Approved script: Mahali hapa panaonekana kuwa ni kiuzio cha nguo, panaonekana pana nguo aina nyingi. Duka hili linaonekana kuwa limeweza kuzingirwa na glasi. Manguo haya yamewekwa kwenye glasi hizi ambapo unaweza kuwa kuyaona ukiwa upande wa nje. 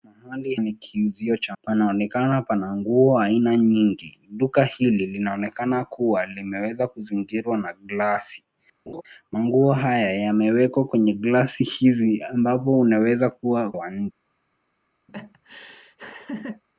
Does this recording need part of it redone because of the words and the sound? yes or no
yes